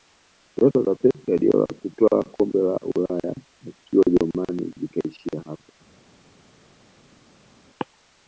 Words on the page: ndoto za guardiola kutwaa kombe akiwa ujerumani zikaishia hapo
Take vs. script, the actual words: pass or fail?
fail